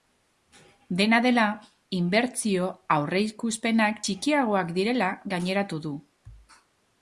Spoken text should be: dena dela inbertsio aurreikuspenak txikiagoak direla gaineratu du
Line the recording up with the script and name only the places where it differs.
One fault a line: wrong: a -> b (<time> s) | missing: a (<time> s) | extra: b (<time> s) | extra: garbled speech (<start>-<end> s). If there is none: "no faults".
no faults